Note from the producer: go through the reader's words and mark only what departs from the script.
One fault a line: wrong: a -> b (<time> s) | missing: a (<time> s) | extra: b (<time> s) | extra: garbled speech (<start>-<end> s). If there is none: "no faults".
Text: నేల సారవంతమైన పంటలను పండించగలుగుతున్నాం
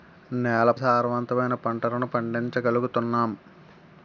no faults